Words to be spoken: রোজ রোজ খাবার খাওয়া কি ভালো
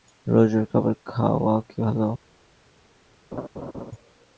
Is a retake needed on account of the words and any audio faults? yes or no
yes